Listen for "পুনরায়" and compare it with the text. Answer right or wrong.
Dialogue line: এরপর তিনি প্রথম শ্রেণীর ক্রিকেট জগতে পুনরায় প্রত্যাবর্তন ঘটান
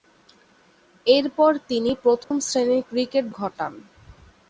wrong